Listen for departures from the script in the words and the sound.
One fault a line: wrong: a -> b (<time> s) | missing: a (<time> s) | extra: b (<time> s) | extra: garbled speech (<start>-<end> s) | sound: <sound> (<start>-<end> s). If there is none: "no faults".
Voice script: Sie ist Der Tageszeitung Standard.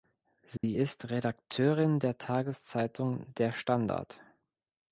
sound: dropout (0.6-0.6 s)
extra: Redakteurin (1.1 s)
extra: Der (3.3 s)